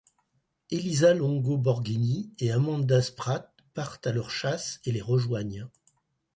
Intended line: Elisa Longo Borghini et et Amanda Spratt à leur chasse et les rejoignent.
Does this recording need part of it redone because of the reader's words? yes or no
yes